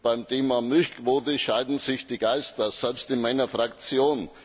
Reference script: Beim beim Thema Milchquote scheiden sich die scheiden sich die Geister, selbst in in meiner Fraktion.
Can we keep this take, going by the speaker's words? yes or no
no